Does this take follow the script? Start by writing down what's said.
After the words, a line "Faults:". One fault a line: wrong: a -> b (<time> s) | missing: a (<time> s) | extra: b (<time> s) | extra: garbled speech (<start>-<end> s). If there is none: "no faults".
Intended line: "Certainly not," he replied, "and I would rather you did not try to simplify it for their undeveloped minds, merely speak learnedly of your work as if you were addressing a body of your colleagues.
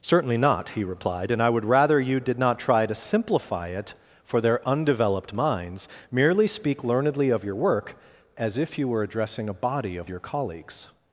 "Certainly not," he replied, "and I would rather you did not try to simplify it for their undeveloped minds, merely speak learnedly of your work as if you were addressing a body of your colleagues.
Faults:
no faults